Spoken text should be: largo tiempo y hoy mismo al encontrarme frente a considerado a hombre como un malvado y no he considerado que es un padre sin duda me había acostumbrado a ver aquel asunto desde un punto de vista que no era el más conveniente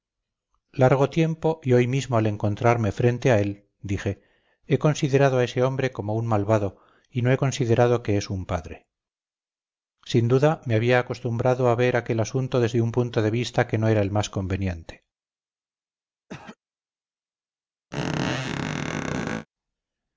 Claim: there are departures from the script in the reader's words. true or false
true